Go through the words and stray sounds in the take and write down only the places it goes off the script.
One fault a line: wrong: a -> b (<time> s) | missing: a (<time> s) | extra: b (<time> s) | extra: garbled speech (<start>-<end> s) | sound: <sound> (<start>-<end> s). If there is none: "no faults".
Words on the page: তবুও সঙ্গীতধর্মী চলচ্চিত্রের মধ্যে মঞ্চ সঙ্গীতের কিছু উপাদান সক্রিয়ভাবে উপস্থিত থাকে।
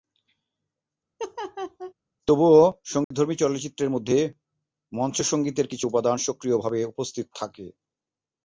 sound: laugh (1.2-1.9 s)
sound: dropout (3.0-3.1 s)